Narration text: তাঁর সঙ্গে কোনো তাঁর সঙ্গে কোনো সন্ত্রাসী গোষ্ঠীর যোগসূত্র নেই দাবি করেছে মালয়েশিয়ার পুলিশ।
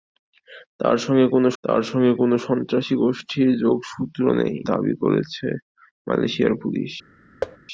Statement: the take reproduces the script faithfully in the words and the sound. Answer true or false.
false